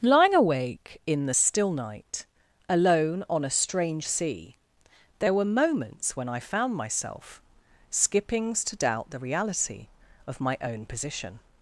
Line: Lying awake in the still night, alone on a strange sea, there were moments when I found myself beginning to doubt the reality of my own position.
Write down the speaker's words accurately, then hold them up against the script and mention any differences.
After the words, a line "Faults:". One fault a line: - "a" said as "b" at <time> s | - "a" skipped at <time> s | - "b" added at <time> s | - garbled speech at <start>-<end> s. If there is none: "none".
Lying awake in the still night, alone on a strange sea, there were moments when I found myself skippings to doubt the reality of my own position.
Faults:
- "beginning" said as "skippings" at 7.9 s